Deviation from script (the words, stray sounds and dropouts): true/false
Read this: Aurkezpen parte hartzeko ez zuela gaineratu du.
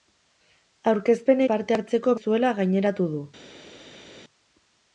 false